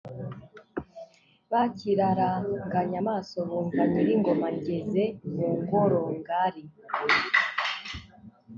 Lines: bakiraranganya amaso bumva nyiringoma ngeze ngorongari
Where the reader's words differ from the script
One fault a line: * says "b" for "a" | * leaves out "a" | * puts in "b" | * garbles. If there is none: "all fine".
* puts in "mu"